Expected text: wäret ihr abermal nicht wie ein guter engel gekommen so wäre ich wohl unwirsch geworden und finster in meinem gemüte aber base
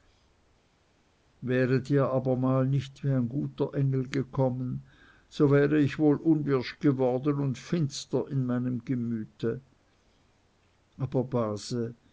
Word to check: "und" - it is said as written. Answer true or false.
true